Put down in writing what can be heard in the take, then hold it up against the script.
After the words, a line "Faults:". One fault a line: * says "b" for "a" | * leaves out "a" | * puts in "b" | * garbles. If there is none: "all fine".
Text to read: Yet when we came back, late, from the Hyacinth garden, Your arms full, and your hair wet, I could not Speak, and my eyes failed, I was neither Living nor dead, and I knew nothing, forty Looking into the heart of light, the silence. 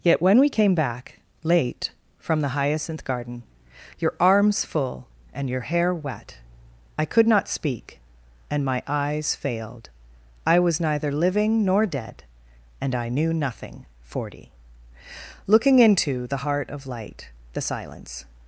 Yet when we came back, late, from the Hyacinth garden, Your arms full, and your hair wet, I could not Speak, and my eyes failed, I was neither Living nor dead, and I knew nothing, forty Looking into the heart of light, the silence.
Faults:
all fine